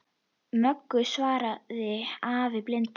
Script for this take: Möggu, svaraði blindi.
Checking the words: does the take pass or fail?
fail